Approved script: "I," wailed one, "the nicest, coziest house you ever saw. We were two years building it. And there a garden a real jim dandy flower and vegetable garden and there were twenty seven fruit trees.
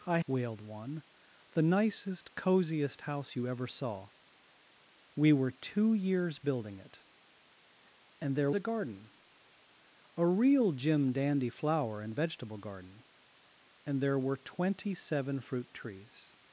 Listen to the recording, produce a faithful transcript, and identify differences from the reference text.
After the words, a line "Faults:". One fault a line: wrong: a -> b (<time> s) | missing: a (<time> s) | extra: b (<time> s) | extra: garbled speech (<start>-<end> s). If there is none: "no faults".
"I," wailed one, "the nicest, coziest house you ever saw. We were two years building it. And there a garden a real jim dandy flower and vegetable garden and there were twenty seven fruit trees.
Faults:
no faults